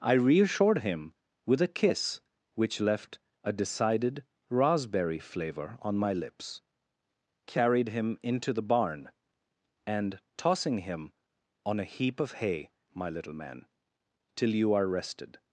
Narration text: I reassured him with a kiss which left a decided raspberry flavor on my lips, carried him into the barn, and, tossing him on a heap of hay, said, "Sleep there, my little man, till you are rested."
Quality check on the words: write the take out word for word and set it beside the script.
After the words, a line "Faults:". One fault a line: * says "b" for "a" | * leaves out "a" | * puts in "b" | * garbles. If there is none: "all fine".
I reassured him with a kiss which left a decided raspberry flavor on my lips, carried him into the barn, and, tossing him on a heap of hay, my little man, till you are rested."
Faults:
* leaves out "said Sleep there"